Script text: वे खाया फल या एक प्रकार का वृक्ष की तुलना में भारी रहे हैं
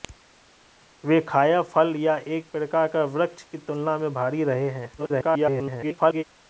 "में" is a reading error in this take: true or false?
false